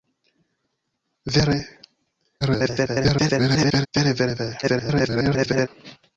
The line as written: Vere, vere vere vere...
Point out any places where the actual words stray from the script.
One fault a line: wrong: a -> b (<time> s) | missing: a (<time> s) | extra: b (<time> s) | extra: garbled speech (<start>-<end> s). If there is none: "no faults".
extra: garbled speech (2.4-3.9 s)
extra: garbled speech (4.6-5.7 s)